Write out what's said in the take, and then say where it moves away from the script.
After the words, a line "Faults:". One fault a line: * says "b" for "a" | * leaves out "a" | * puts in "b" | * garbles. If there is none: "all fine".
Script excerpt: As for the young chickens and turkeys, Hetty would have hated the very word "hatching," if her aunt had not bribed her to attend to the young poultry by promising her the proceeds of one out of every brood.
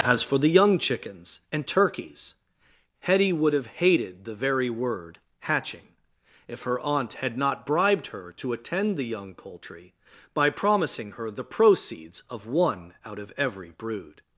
As for the young chickens and turkeys, Hetty would have hated the very word "hatching," if her aunt had not bribed her to attend the young poultry by promising her the proceeds of one out of every brood.
Faults:
* leaves out "to"